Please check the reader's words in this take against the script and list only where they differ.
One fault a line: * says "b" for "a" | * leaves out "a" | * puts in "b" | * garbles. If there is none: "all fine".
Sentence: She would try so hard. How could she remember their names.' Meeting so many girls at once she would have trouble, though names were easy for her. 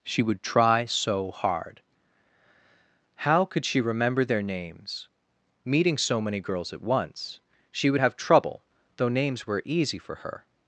all fine